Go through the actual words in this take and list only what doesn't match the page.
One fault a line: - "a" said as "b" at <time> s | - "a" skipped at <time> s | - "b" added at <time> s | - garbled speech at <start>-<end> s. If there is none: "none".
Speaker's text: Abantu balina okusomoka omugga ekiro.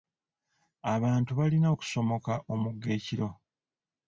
none